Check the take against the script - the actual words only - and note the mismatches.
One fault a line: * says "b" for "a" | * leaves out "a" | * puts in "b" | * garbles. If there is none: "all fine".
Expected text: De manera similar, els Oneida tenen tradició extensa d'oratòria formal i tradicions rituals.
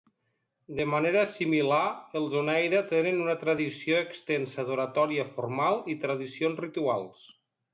* puts in "una"